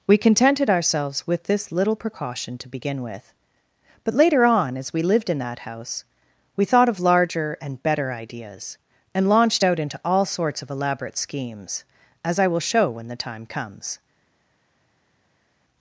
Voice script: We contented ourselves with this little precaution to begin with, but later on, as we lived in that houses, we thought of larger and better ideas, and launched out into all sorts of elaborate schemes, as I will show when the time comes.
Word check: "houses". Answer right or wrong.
wrong